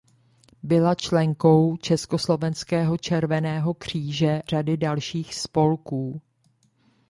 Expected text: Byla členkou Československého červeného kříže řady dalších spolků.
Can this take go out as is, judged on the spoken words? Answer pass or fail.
pass